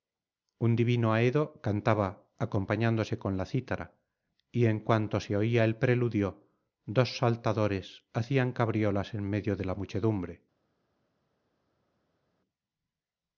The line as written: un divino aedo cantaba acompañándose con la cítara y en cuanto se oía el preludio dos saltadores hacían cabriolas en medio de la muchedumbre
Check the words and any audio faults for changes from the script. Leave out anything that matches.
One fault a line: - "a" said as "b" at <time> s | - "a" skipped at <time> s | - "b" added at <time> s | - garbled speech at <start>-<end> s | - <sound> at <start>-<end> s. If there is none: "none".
none